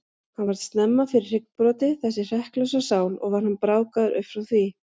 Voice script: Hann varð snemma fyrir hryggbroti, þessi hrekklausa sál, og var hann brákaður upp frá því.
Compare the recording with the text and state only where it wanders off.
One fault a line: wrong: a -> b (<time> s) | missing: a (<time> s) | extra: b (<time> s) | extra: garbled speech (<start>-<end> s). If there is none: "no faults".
no faults